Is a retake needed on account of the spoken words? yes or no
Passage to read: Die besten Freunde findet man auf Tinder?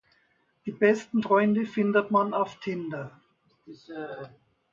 no